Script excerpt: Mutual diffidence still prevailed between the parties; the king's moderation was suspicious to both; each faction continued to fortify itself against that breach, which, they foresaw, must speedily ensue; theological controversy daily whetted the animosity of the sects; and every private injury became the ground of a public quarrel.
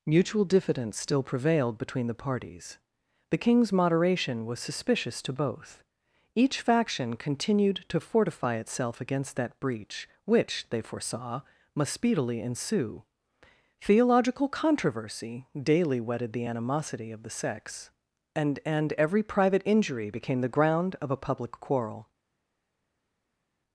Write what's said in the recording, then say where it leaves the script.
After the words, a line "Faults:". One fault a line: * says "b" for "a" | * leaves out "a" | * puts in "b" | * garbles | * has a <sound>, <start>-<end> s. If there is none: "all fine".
Mutual diffidence still prevailed between the parties; the king's moderation was suspicious to both; each faction continued to fortify itself against that breach, which, they foresaw, must speedily ensue; theological controversy daily whetted the animosity of the sects; and and every private injury became the ground of a public quarrel.
Faults:
* puts in "and"